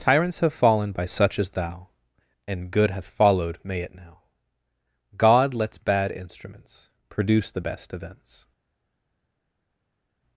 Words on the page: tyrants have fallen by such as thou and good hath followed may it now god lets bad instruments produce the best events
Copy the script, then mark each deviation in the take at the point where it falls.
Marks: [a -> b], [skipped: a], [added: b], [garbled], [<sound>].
tyrants have fallen by such as thou and good hath followed may it now god lets bad instruments produce the best events